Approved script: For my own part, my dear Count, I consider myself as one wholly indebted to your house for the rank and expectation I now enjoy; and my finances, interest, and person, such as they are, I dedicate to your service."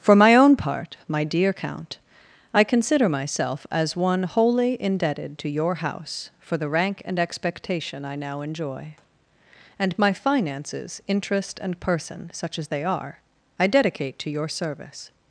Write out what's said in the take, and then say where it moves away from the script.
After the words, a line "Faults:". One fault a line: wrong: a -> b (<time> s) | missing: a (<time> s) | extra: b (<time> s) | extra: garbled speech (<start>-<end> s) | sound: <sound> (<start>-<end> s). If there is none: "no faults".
For my own part, my dear Count, I consider myself as one wholly indebted to your house for the rank and expectation I now enjoy; and my finances, interest, and person, such as they are, I dedicate to your service."
Faults:
no faults